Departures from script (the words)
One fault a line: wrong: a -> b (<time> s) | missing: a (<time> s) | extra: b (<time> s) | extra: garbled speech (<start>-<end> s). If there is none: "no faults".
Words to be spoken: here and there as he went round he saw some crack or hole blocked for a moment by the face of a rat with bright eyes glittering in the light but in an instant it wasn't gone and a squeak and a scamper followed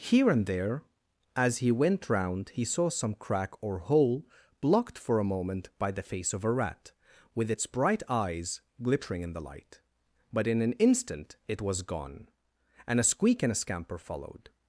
extra: its (7.5 s)
wrong: wasn't -> was (11.6 s)